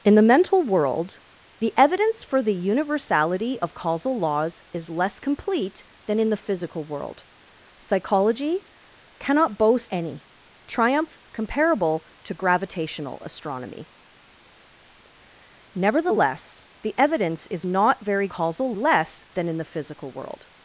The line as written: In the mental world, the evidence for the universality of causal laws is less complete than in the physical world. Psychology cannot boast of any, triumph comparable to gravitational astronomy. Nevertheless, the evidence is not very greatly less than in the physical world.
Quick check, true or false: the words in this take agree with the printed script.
false